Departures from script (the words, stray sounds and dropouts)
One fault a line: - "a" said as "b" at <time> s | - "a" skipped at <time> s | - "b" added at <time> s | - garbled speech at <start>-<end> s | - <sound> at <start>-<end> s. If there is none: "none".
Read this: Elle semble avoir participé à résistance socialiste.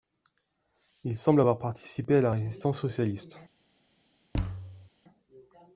- "Elle" said as "Il" at 1.0 s
- "la" added at 2.2 s
- thud at 4.3-4.9 s